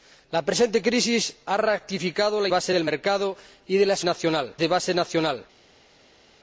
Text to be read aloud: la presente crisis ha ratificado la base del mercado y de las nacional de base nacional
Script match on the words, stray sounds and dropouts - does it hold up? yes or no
yes